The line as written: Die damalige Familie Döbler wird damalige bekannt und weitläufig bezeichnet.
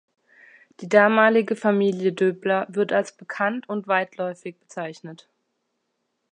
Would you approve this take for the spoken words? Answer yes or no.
no